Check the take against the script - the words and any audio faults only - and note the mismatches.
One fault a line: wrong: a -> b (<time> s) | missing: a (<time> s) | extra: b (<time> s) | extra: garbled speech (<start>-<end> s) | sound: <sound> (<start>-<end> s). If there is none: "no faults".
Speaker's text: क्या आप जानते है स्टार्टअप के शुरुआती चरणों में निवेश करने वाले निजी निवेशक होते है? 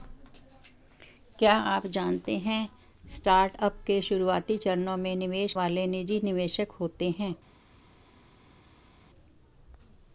missing: करने (5.5 s)